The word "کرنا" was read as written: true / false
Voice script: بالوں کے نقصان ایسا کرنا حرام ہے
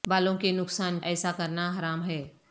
true